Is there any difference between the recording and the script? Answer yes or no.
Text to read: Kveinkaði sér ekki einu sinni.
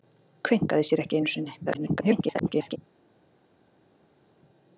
yes